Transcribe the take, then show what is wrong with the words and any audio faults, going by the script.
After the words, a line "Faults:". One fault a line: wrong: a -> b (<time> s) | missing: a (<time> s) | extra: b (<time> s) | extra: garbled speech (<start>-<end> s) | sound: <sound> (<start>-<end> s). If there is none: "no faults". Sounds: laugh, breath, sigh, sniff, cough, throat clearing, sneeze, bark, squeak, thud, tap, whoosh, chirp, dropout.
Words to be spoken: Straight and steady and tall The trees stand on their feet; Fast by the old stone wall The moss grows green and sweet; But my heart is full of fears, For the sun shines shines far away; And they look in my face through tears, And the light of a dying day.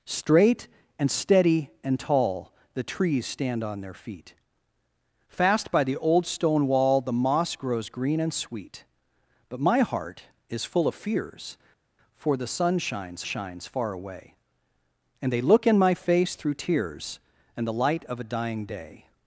Straight and steady and tall The trees stand on their feet; Fast by the old stone wall The moss grows green and sweet; But my heart is full of fears, For the sun shines shines far away; And they look in my face through tears, And the light of a dying day.
Faults:
no faults